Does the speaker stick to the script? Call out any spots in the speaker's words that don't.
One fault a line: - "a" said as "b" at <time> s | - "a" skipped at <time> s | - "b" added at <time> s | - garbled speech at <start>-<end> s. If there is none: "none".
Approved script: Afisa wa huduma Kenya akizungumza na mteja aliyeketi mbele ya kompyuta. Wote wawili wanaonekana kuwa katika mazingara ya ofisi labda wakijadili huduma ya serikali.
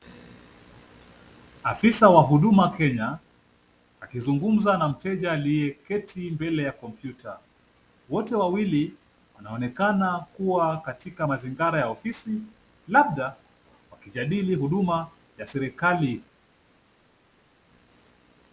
none